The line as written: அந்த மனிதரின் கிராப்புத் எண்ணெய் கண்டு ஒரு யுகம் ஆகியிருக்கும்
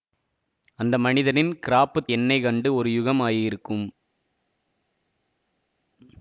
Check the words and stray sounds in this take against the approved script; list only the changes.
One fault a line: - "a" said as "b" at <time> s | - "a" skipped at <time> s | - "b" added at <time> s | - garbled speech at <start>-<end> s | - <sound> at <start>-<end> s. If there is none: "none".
none